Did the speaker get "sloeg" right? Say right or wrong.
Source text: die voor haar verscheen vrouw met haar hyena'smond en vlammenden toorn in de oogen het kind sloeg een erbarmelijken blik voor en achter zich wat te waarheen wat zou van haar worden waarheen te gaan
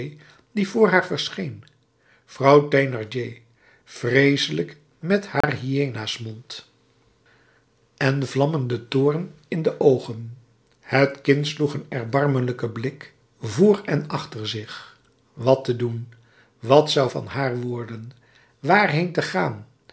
right